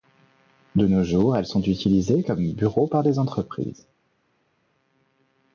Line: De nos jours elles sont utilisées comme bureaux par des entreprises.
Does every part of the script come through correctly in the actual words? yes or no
yes